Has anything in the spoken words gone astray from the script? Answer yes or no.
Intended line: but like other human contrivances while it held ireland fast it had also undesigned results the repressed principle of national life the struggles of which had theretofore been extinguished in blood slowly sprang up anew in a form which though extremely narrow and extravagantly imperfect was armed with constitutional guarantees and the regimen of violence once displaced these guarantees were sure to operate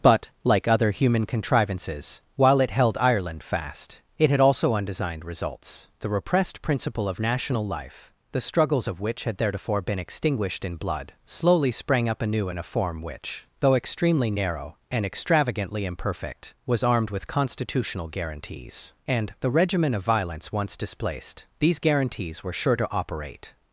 no